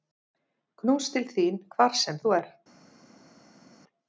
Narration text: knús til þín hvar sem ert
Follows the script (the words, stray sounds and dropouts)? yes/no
no